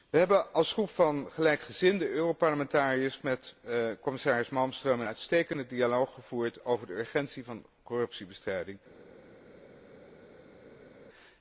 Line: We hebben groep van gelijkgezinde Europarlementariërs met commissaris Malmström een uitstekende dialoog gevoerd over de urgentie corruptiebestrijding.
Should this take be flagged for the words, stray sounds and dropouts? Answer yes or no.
yes